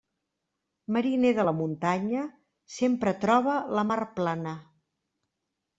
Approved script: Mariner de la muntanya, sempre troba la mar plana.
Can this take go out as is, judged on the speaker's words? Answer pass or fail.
pass